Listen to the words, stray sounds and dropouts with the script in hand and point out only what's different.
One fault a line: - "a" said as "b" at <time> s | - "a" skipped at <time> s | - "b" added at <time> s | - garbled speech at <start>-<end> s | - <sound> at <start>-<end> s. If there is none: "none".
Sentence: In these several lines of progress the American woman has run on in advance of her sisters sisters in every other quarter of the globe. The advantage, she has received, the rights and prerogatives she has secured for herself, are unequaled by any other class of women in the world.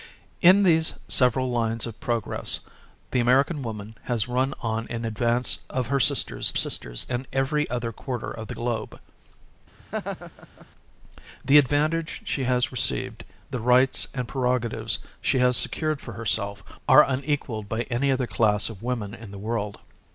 - laugh at 9.8-10.7 s